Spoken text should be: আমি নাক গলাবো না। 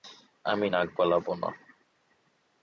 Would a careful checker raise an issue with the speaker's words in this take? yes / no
no